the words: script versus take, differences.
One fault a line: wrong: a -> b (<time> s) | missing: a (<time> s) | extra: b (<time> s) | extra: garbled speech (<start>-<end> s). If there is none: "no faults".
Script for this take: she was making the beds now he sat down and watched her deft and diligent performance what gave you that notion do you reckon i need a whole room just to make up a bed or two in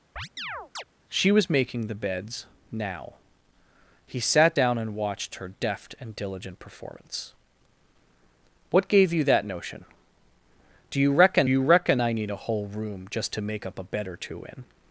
extra: you reckon (11.5 s)